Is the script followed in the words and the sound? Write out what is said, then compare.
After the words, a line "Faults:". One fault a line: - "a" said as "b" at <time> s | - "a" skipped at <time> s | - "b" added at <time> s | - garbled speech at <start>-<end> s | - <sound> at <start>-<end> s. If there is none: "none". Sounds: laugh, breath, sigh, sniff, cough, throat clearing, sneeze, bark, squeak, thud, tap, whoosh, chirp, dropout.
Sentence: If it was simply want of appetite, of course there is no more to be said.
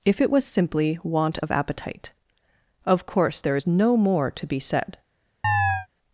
If it was simply want of appetite, of course there is no more to be said.
Faults:
- chirp at 5.4-5.9 s